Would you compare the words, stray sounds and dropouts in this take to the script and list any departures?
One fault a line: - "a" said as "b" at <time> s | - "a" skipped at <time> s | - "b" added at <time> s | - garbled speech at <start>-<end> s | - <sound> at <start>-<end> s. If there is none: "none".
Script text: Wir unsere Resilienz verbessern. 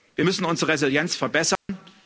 - "müssen" added at 0.2 s
- dropout at 1.6-1.7 s